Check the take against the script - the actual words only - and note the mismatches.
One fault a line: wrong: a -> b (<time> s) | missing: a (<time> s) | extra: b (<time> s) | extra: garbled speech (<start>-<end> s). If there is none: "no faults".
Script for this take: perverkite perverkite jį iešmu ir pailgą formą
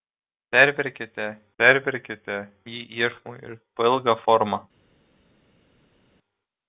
no faults